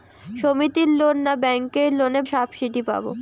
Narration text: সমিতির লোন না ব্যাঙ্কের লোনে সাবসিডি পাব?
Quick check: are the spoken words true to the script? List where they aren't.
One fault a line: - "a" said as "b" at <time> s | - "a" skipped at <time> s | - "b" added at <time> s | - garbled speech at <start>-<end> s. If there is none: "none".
none